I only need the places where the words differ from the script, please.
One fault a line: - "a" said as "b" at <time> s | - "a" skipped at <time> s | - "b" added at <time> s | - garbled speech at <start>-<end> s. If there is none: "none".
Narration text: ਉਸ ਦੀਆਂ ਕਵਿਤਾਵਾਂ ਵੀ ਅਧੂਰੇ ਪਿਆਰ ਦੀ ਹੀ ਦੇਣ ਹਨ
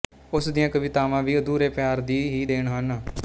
none